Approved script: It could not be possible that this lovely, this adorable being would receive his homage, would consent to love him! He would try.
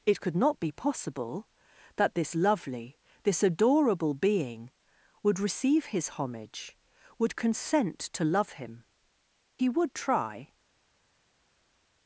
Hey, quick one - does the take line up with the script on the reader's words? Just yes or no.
yes